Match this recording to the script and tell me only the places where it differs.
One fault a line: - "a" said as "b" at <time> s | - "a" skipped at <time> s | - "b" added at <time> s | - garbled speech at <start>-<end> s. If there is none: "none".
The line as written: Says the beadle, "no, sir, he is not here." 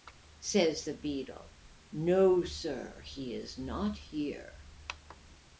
none